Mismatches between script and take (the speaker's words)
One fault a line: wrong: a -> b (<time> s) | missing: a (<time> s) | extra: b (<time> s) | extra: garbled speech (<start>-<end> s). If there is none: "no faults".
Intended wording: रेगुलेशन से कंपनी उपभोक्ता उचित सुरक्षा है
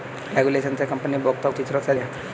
no faults